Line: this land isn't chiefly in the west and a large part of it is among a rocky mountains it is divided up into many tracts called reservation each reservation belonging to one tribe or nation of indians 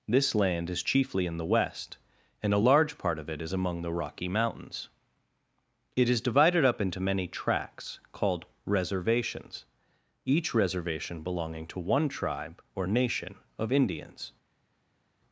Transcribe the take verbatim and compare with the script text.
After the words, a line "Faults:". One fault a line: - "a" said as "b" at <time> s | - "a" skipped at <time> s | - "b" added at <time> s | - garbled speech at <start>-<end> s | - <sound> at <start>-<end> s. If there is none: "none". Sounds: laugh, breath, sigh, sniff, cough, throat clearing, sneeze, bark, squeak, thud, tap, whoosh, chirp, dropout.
this land is chiefly in the west and a large part of it is among the rocky mountains it is divided up into many tracts called reservations each reservation belonging to one tribe or nation of indians
Faults:
- "isn't" said as "is" at 0.7 s
- "a" said as "the" at 3.8 s
- "reservation" said as "reservations" at 8.6 s